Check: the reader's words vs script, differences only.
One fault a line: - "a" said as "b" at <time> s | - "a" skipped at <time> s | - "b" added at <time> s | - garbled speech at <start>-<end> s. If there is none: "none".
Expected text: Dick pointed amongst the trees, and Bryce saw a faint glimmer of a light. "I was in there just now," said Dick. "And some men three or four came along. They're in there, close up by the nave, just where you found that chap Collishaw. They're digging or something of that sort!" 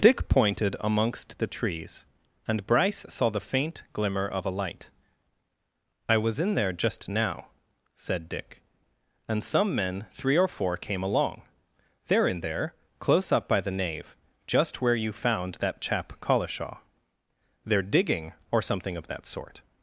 - "a" said as "the" at 3.3 s